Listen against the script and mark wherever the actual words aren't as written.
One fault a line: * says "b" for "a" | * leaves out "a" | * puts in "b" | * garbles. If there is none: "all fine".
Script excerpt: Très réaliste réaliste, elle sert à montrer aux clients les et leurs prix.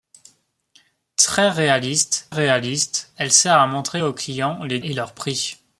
all fine